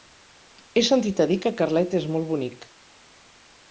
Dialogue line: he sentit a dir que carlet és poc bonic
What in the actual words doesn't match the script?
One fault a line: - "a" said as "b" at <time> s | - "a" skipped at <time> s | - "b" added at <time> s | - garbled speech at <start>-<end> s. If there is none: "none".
- "poc" said as "molt" at 2.2 s